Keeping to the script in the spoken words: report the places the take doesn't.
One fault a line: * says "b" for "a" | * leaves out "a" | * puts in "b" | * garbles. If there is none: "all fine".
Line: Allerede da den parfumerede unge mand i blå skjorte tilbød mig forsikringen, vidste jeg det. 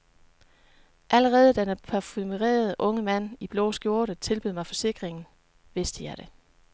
all fine